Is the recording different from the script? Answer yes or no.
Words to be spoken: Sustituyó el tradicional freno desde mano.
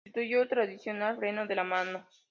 yes